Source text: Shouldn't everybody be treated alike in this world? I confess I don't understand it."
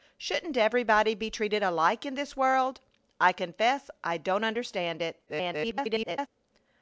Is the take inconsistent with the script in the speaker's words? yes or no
yes